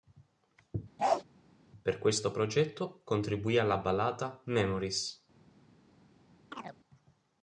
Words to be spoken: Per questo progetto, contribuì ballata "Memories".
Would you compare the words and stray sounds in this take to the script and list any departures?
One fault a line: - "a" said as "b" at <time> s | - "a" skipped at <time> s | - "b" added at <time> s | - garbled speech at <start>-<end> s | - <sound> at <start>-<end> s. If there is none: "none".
- bark at 1.0-1.2 s
- "alla" added at 3.6 s
- chirp at 6.5-6.8 s